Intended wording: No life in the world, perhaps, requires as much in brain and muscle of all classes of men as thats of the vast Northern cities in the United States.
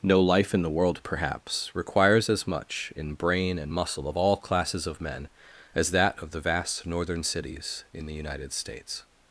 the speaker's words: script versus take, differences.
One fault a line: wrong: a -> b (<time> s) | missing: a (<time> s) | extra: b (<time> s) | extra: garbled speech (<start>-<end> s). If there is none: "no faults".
wrong: thats -> that (5.9 s)